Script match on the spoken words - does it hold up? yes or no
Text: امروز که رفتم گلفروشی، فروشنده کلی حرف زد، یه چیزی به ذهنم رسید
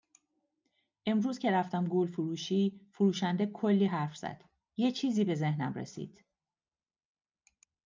yes